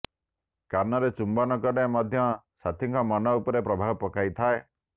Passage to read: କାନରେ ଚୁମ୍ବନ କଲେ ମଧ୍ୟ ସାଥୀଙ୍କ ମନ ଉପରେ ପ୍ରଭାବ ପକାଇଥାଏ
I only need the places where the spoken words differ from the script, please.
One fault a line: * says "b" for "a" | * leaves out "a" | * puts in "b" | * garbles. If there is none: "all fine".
all fine